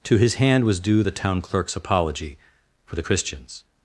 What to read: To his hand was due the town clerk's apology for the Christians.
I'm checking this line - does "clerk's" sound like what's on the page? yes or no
yes